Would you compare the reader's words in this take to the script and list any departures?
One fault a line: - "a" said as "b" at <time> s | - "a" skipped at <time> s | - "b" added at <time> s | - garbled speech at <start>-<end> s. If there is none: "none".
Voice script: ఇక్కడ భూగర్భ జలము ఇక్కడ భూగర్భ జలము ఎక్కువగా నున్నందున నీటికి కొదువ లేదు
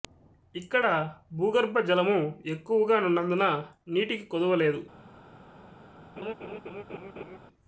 - "ఇక్కడ భూగర్భ జలము" skipped at 2.2 s